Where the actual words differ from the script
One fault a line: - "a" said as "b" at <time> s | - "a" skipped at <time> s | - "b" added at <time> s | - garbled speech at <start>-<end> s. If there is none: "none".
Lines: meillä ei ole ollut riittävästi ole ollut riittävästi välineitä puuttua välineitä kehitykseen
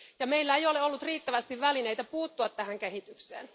- "ole ollut riittävästi" skipped at 1.6 s
- "välineitä" said as "tähän" at 2.5 s